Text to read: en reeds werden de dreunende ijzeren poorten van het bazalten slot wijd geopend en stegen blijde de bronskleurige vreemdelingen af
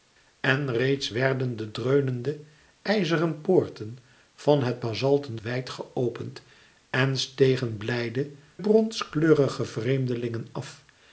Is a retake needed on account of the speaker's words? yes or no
yes